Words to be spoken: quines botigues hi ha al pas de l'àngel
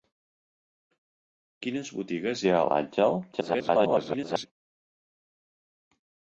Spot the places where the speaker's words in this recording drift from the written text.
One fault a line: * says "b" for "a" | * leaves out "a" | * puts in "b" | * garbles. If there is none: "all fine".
* leaves out "al pas"
* garbles